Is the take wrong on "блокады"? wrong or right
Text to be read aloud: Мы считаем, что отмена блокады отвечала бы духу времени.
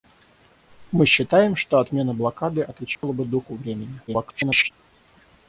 right